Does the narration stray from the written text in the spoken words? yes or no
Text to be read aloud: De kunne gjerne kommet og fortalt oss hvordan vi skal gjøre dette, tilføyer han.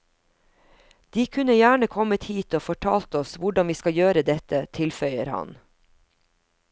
yes